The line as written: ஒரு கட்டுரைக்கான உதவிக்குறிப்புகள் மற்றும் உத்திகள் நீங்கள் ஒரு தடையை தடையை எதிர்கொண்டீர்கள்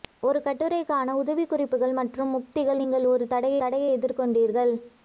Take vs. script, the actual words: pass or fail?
pass